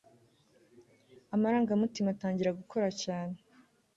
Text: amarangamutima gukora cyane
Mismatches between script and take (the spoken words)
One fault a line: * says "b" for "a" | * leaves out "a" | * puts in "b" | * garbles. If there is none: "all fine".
* puts in "atangira"